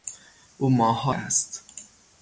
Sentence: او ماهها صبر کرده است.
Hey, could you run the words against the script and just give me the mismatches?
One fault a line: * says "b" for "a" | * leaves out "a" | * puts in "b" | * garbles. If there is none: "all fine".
* leaves out "صبر کرده"